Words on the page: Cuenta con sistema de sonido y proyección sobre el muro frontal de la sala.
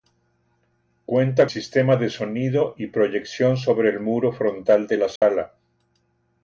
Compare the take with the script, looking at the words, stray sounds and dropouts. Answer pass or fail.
fail